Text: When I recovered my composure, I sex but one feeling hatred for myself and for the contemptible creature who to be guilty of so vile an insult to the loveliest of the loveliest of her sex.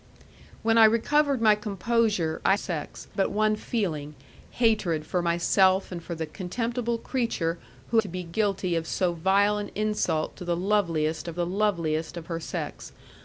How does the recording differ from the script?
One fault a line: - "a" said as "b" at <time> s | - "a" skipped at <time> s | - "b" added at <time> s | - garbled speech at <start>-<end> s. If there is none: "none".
none